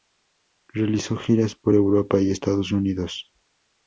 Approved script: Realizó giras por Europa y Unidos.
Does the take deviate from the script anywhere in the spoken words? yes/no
yes